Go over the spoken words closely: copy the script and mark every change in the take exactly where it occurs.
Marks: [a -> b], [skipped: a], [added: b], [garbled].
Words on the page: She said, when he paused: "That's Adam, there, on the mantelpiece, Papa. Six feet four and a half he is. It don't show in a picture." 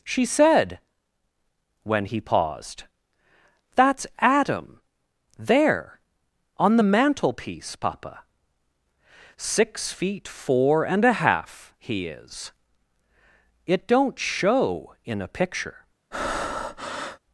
She said, when he paused: "That's Adam, there, on the mantelpiece, Papa. Six feet four and a half he is. It don't show in a picture."